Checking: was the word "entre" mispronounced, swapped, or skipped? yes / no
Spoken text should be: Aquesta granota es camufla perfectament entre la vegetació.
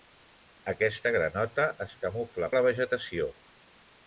yes